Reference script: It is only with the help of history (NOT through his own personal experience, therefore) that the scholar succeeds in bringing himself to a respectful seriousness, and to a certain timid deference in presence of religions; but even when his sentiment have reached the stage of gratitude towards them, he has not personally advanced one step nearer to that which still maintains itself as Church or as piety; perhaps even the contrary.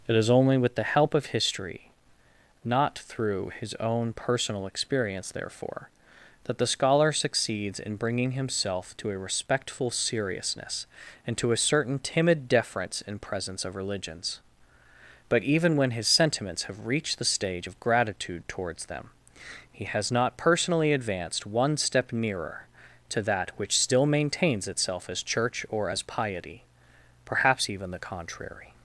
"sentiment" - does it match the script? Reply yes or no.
no